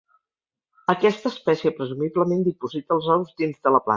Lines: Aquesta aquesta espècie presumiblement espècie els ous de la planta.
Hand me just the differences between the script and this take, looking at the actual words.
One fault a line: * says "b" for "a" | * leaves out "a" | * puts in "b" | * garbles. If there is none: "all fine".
* leaves out "aquesta"
* says "diposita" for "espècie"
* puts in "dins"